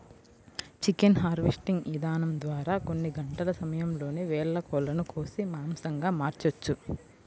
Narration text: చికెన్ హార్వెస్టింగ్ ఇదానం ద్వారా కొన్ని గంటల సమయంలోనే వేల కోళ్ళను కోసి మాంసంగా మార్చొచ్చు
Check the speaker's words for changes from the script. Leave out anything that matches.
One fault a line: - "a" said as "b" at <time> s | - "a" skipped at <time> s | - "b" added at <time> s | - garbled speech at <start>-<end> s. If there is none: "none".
none